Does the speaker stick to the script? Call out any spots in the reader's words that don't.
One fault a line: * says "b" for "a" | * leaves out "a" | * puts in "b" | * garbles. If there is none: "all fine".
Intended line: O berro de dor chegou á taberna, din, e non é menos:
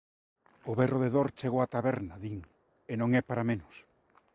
* puts in "para"